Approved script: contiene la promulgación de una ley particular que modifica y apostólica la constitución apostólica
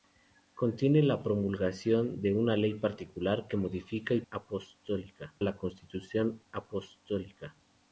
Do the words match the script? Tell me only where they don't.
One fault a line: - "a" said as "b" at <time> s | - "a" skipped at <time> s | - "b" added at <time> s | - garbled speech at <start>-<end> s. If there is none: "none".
none